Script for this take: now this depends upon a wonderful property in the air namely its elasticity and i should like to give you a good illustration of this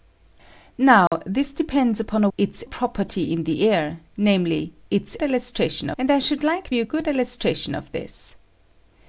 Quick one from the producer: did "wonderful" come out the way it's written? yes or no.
no